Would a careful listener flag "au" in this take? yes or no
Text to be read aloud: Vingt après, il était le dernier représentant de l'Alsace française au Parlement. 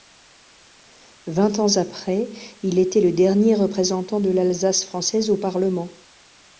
no